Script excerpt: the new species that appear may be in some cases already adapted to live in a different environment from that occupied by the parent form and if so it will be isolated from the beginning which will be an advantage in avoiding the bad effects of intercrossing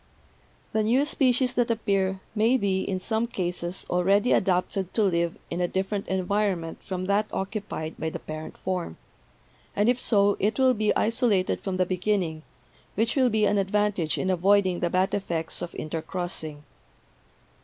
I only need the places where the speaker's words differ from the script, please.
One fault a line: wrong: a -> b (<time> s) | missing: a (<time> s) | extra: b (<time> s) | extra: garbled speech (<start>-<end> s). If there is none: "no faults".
no faults